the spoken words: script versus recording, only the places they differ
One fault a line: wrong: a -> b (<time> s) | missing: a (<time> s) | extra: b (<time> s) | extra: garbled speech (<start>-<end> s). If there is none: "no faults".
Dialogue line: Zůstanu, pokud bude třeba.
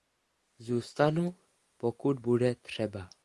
no faults